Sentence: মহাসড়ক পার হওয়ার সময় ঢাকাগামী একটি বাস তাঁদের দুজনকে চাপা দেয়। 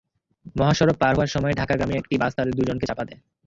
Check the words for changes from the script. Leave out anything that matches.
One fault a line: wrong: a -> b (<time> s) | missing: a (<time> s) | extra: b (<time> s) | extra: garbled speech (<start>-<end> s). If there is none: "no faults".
no faults